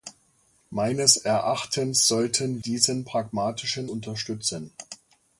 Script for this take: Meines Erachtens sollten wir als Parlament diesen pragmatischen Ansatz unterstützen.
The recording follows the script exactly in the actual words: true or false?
false